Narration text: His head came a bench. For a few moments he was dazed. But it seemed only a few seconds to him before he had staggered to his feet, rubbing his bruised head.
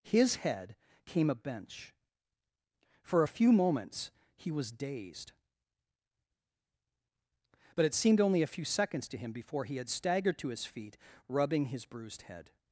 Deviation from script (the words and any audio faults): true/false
false